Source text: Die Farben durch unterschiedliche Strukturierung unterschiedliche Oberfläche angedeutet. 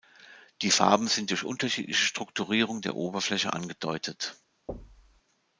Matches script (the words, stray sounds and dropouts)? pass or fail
fail